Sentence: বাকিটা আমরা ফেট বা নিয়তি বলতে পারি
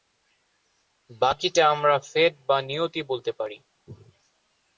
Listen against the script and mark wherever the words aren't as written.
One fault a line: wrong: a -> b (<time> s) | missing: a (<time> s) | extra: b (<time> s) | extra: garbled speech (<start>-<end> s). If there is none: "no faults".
no faults